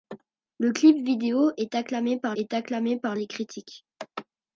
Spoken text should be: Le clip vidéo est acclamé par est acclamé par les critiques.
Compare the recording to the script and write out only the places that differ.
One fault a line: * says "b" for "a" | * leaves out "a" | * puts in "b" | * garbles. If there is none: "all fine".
all fine